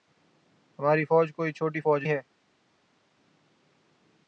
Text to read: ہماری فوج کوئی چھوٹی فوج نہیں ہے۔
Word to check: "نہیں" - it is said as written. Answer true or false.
false